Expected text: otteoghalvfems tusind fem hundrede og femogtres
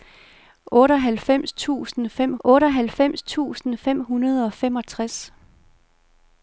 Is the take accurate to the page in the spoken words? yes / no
no